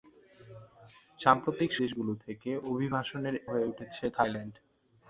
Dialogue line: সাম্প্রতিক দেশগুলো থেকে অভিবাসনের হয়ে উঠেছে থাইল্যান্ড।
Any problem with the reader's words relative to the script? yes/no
no